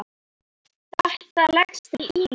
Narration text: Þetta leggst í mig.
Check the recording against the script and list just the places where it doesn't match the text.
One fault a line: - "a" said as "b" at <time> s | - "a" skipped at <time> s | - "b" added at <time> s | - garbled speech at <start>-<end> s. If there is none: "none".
none